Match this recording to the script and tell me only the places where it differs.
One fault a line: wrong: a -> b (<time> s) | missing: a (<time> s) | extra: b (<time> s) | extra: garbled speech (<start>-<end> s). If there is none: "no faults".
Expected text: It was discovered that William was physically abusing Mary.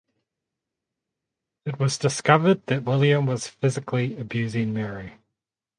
no faults